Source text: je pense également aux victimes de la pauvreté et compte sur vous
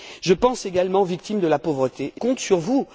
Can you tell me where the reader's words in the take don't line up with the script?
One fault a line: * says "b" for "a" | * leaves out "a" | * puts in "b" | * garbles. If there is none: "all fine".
all fine